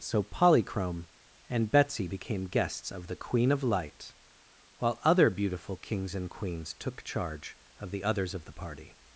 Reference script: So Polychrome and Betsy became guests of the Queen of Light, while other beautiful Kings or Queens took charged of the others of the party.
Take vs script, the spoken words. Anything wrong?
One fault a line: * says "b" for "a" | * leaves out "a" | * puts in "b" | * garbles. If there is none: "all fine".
* says "and" for "or"
* says "charge" for "charged"